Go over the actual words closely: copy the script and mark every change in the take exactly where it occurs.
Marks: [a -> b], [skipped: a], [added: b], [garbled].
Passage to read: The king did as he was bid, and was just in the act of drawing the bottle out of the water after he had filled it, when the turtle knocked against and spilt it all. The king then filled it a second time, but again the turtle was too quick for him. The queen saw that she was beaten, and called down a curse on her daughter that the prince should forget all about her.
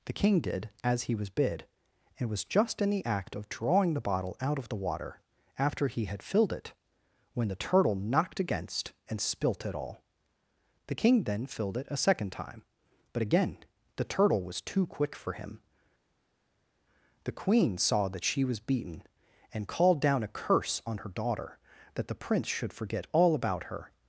The king did as he was bid, and was just in the act of drawing the bottle out of the water after he had filled it, when the turtle knocked against and spilt it all. The king then filled it a second time, but again the turtle was too quick for him. The queen saw that she was beaten, and called down a curse on her daughter that the prince should forget all about her.